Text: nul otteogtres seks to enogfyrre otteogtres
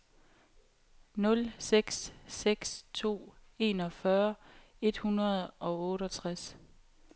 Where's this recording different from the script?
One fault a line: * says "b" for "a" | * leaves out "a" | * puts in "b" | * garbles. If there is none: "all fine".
* says "seks" for "otteogtres"
* puts in "et hundrede og"